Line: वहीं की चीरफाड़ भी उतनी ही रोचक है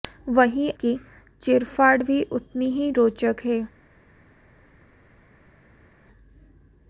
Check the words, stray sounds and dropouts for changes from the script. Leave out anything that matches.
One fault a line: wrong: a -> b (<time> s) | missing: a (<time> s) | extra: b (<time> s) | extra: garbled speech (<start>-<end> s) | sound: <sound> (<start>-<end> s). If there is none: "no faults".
no faults